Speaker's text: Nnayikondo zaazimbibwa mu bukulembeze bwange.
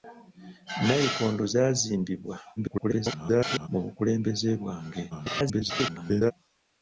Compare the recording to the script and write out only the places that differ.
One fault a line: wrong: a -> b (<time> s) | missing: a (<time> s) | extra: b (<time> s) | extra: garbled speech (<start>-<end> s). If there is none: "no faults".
extra: garbled speech (2.6-3.7 s)
extra: garbled speech (5.1-6.3 s)